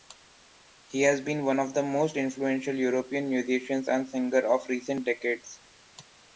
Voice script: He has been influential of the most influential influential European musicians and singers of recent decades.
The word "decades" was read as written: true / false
true